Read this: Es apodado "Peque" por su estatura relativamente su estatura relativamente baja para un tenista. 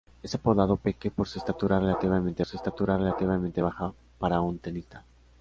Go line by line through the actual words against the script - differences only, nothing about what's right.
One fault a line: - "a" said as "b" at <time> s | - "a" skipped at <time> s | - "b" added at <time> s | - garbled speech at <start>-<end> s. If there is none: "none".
none